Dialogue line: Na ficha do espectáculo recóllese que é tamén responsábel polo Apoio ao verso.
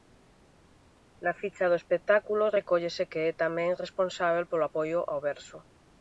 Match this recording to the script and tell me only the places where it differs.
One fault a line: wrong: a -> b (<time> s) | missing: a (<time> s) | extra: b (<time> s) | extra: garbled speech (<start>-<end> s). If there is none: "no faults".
no faults